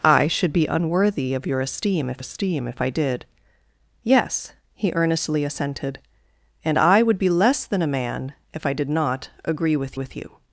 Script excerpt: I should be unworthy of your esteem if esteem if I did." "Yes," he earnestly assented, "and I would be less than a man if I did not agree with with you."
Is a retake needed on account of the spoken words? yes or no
no